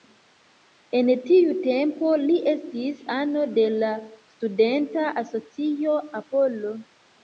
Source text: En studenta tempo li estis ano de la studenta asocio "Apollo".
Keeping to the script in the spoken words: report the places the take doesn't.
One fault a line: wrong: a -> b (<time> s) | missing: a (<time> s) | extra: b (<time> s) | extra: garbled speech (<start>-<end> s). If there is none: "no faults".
wrong: studenta -> tiu (1.3 s)